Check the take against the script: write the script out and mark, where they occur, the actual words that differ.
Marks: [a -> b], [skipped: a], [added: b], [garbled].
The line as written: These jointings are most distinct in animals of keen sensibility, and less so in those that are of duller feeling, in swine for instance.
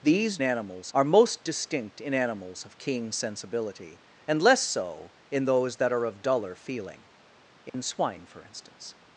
These [jointings -> animals] are most distinct in animals of keen sensibility, and less so in those that are of duller feeling, in swine for instance.